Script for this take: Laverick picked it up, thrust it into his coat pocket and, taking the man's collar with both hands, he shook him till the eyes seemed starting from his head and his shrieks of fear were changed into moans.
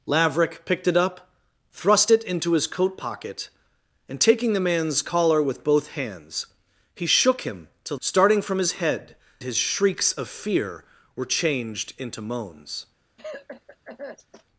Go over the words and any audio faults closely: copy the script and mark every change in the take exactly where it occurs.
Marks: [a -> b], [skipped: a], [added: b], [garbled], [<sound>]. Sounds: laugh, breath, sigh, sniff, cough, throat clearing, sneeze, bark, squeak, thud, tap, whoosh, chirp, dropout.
Laverick picked it up, thrust it into his coat pocket and, taking the man's collar with both hands, he shook him till [skipped: the eyes seemed] starting from his head [skipped: and] his shrieks of fear were changed into moans. [cough]